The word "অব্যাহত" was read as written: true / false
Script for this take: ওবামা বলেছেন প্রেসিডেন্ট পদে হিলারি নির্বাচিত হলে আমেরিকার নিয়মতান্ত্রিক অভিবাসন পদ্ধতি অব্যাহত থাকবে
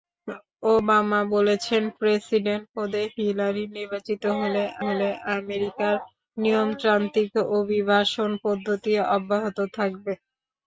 true